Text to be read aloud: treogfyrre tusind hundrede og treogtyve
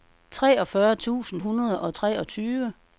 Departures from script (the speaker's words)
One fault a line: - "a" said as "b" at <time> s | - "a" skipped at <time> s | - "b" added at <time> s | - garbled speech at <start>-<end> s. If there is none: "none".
none